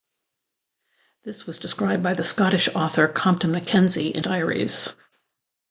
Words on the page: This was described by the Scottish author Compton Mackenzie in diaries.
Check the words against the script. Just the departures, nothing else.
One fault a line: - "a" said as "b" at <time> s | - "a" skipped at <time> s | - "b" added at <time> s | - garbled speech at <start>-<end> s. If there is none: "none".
none